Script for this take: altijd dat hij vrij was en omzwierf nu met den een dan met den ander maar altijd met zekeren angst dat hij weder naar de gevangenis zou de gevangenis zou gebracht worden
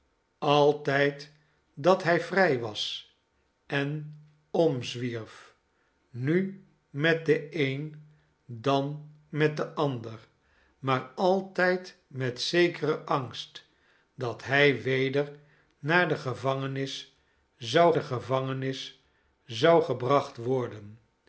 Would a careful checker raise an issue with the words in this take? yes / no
no